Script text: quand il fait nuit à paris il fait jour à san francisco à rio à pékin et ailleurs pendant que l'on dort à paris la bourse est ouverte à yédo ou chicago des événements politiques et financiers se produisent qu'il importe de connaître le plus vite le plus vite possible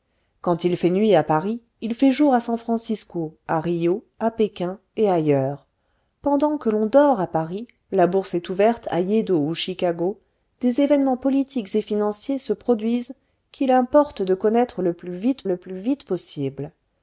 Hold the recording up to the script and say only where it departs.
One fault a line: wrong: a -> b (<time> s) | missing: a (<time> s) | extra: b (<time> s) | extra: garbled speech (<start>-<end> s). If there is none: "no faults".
no faults